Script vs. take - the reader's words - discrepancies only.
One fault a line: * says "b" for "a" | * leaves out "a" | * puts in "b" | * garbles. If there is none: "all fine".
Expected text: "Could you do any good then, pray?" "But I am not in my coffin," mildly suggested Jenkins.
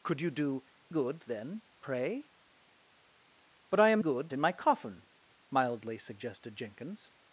* leaves out "any"
* says "good" for "not"